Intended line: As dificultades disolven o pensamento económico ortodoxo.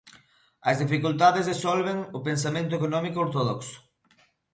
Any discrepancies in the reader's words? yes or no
no